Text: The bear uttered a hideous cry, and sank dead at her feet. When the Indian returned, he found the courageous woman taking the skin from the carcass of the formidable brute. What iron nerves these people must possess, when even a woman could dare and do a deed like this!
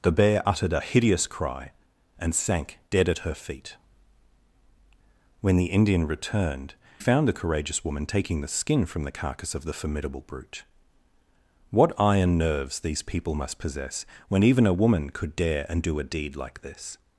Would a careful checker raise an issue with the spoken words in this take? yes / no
yes